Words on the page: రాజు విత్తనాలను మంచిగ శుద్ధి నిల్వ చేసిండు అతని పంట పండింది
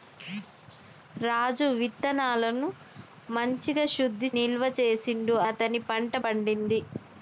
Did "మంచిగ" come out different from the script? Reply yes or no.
no